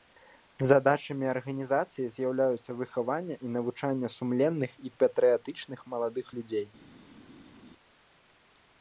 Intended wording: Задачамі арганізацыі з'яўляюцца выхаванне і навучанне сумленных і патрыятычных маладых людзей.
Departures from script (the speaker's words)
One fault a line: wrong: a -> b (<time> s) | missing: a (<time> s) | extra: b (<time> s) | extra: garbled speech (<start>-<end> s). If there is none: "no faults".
no faults